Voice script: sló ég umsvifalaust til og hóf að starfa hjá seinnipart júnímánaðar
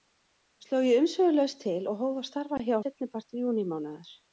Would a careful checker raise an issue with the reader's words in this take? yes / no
no